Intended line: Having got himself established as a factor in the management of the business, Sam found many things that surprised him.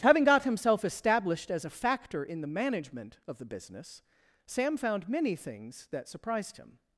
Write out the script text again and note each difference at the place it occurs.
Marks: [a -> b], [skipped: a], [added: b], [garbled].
Having got himself established as a factor in the management of the business, Sam found many things that surprised him.